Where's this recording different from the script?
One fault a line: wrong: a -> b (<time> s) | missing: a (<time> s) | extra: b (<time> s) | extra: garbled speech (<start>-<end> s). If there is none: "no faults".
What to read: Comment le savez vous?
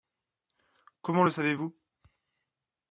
no faults